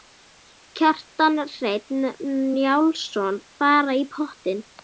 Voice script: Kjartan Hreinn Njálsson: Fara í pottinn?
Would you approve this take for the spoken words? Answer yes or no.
yes